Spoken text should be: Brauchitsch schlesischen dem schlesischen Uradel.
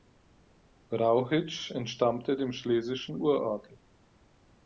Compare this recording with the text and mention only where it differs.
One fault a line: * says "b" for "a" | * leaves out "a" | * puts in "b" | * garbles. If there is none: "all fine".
* says "entstammte" for "schlesischen"